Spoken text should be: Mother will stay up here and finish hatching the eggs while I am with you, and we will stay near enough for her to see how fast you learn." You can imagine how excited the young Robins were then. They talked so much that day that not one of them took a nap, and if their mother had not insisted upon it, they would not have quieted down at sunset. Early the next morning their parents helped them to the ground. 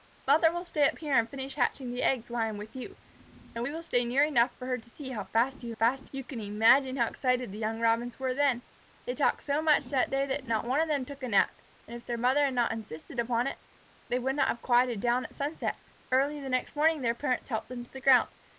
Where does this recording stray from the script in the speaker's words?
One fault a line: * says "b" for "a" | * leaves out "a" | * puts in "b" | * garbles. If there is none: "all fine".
* says "fast" for "learn"